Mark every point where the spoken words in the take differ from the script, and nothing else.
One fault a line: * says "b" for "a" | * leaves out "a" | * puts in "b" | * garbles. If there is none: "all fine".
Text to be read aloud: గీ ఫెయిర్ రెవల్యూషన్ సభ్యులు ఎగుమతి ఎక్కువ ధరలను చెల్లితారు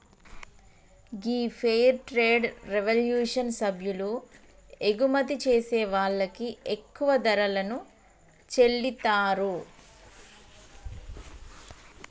* puts in "ట్రేడ్"
* puts in "చేసే వాళ్ళకి"